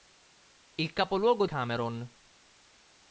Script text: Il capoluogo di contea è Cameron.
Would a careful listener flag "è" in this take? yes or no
yes